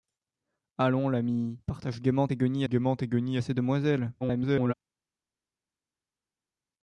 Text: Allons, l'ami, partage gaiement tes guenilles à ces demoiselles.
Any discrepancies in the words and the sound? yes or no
yes